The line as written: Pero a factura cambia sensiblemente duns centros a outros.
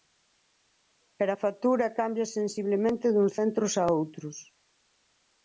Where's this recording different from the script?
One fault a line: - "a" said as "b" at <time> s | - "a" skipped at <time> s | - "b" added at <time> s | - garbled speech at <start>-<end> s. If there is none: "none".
none